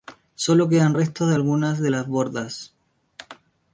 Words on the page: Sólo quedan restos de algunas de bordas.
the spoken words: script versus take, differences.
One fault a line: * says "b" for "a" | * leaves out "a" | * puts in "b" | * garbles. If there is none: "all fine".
* puts in "las"